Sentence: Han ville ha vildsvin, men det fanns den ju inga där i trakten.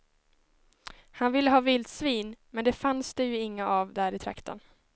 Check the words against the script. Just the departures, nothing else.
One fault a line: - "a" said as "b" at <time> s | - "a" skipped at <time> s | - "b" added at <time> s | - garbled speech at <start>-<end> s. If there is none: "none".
- "den" said as "det" at 3.1 s
- "av" added at 3.7 s